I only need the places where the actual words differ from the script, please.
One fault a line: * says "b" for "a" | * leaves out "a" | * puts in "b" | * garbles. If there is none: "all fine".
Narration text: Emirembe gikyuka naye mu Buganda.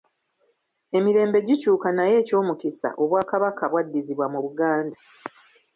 * puts in "ekyomukisa Obwakabaka bwaddizibwa"